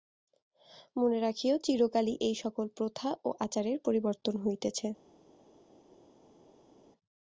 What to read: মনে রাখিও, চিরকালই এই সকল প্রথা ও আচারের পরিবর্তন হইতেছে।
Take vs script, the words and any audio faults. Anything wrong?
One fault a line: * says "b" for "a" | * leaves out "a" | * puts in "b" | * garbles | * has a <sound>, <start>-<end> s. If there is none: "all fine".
all fine